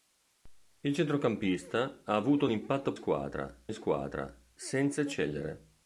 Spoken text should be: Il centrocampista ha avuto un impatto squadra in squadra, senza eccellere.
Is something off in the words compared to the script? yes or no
no